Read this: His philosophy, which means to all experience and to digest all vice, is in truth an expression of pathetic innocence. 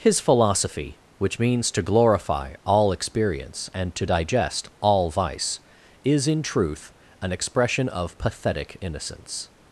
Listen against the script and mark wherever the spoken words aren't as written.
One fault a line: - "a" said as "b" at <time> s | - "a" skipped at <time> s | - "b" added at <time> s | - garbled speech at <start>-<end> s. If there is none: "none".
- "glorify" added at 1.8 s